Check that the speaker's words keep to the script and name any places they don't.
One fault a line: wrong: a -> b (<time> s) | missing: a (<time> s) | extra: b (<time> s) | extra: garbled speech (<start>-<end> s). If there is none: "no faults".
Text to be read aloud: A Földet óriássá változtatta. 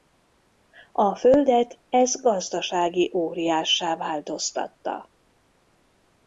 extra: ez gazdasági (1.9 s)